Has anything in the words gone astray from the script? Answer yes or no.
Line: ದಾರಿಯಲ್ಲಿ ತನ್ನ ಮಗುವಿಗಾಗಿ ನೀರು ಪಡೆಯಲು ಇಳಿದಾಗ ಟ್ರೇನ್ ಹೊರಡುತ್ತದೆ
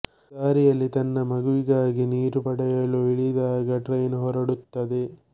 no